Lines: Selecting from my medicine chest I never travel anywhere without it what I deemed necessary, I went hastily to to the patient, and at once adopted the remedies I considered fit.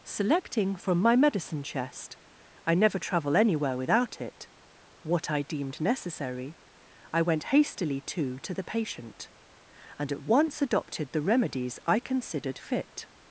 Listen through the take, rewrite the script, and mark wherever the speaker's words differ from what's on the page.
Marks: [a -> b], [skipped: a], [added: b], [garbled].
Selecting from my medicine chest I never travel anywhere without it what I deemed necessary, I went hastily to to the patient, and at once adopted the remedies I considered fit.